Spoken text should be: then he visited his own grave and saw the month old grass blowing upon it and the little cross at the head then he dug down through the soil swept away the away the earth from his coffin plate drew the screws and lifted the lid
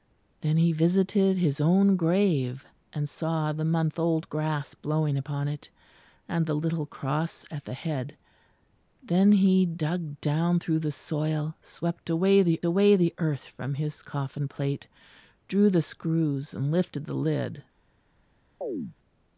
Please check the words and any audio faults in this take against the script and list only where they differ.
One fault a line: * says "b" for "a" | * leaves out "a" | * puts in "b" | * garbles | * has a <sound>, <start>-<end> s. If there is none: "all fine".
* has a chirp, 18.6-19.0 s